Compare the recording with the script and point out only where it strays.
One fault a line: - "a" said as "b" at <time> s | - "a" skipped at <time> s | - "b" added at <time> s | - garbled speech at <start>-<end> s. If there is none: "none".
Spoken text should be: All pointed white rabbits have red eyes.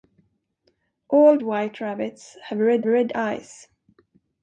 - "pointed" skipped at 1.4 s
- "red" added at 2.9 s